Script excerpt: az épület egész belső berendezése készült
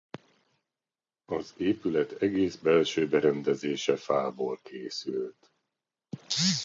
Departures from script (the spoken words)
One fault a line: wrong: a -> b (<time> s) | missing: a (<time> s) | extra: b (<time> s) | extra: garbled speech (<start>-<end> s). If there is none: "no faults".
extra: fából (4.0 s)